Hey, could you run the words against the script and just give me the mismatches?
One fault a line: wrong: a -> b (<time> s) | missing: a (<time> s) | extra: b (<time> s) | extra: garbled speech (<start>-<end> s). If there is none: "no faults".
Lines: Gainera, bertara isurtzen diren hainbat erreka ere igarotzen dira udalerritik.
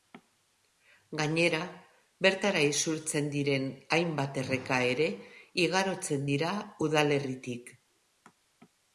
no faults